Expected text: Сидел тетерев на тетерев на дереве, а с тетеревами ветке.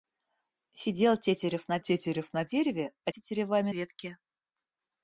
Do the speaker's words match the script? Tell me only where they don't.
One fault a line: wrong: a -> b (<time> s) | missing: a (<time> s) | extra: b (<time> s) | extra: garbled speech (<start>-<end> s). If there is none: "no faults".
no faults